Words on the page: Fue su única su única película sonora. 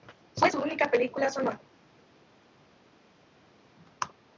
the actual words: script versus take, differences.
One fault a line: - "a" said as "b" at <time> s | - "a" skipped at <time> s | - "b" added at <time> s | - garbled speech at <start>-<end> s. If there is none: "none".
- "su única" skipped at 0.9 s